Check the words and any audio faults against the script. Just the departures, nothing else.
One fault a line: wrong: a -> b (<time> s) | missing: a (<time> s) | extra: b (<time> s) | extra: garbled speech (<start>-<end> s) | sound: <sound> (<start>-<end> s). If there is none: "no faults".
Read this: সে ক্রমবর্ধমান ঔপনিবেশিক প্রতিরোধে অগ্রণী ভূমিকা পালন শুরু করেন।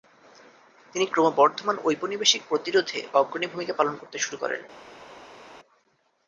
wrong: সে -> তিনি (0.9 s)
extra: করতে (4.0 s)